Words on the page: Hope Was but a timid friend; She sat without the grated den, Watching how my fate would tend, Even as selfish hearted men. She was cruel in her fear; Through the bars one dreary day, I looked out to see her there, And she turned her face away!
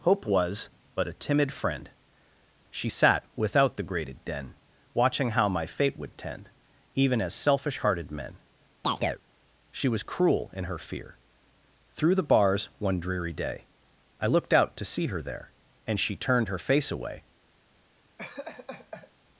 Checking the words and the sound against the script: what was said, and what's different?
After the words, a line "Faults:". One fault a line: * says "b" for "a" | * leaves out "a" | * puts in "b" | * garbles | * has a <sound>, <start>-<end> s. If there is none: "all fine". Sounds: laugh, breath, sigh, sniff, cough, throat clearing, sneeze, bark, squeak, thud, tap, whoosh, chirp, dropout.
Hope Was but a timid friend; She sat without the grated den, Watching how my fate would tend, Even as selfish hearted men. She was cruel in her fear; Through the bars one dreary day, I looked out to see her there, And she turned her face away!
Faults:
* has a chirp, 8.8-9.2 s
* has a laugh, 18.2-19.1 s